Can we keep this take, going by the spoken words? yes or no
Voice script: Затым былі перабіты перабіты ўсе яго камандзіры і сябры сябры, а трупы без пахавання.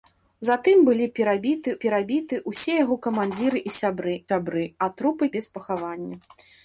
yes